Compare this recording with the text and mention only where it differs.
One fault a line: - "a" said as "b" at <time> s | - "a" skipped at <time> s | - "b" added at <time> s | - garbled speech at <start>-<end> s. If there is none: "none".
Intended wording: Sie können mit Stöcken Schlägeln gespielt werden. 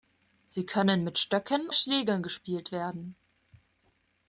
none